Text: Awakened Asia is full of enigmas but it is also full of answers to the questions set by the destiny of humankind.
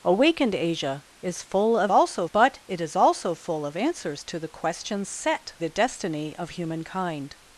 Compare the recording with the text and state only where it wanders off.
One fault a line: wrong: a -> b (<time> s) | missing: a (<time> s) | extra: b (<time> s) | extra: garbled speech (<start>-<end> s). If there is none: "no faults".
wrong: enigmas -> also (1.9 s)
missing: by (5.5 s)